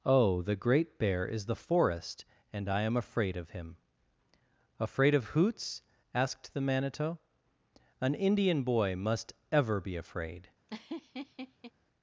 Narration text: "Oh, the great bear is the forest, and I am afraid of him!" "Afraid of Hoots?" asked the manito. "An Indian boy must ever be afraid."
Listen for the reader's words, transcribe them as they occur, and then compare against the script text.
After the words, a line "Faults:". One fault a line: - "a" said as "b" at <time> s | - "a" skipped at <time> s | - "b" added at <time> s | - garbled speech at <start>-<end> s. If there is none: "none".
"Oh, the great bear is the forest, and I am afraid of him!" "Afraid of Hoots?" asked the manito. "An Indian boy must ever be afraid."
Faults:
none